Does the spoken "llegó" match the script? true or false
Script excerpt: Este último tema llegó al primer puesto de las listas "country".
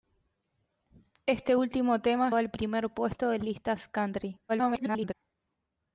false